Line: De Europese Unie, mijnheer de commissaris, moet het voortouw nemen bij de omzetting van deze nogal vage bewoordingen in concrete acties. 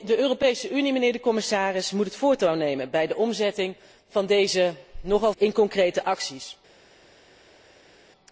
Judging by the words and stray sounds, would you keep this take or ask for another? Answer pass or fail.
fail